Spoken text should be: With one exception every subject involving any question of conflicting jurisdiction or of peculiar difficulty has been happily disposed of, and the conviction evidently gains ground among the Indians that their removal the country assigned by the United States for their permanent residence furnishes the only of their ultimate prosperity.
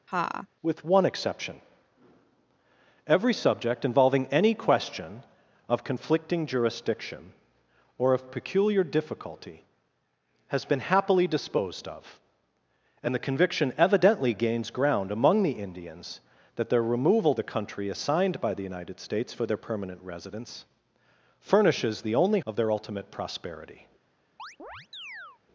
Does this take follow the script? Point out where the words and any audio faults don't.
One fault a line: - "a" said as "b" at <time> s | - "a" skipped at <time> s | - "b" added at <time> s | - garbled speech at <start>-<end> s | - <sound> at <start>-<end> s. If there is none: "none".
- laugh at 0.1-0.5 s
- chirp at 24.4-25.4 s